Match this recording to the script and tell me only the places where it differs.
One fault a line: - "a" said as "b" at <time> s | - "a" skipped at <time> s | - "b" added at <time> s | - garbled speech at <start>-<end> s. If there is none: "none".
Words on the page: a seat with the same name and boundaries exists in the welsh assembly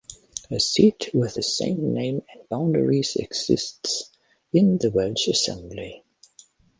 none